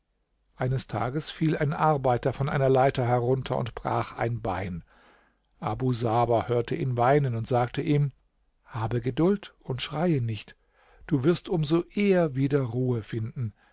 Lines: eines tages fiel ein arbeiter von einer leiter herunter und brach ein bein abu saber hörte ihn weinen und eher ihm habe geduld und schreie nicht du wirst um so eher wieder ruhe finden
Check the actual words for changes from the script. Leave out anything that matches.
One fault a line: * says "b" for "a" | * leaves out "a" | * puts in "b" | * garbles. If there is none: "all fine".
* says "sagte" for "eher"